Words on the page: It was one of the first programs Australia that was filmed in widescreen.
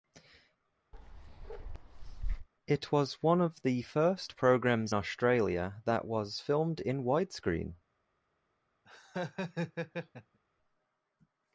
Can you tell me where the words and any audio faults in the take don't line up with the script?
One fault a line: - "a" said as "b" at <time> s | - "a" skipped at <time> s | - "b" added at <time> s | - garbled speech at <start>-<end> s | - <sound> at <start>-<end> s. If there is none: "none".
- bark at 0.9-2.5 s
- laugh at 8.9-10.4 s